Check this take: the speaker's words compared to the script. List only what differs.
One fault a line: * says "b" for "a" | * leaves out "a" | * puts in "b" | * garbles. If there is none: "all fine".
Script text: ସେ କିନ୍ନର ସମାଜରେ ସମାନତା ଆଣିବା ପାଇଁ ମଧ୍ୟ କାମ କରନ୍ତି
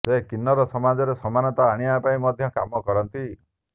all fine